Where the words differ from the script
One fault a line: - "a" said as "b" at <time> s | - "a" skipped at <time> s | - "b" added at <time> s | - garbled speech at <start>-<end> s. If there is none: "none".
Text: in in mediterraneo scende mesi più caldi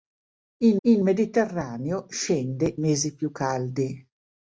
none